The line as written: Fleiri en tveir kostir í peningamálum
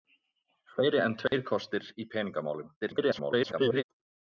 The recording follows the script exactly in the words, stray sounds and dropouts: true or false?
false